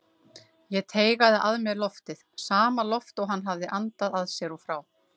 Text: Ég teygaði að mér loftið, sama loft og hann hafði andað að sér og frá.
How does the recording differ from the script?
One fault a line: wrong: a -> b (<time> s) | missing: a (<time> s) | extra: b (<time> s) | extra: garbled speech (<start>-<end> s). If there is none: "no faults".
no faults